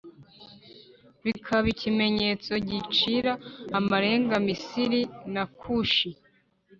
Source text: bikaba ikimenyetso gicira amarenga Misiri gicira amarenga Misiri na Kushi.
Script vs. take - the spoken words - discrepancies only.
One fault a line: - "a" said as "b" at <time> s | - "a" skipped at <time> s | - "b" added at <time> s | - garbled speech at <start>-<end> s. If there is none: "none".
- "gicira amarenga Misiri" skipped at 5.0 s